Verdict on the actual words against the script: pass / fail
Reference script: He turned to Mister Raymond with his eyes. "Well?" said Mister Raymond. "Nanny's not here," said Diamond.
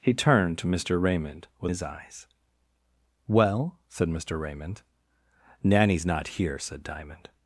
pass